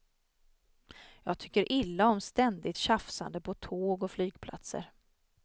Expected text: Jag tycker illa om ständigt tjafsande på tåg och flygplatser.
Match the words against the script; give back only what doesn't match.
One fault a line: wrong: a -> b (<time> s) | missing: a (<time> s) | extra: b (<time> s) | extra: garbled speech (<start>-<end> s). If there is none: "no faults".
no faults